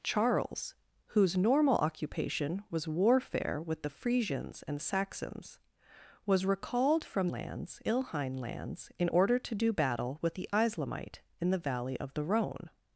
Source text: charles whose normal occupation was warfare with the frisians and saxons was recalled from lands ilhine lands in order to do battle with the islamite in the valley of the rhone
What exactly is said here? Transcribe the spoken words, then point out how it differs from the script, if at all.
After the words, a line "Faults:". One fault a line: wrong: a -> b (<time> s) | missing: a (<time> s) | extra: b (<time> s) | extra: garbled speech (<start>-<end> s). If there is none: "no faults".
charles whose normal occupation was warfare with the frisians and saxons was recalled from lands ilhine lands in order to do battle with the islamite in the valley of the rhone
Faults:
no faults